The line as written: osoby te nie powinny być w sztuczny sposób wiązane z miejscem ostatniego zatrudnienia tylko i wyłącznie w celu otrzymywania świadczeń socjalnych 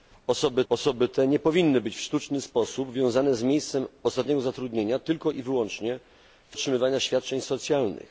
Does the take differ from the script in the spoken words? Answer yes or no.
yes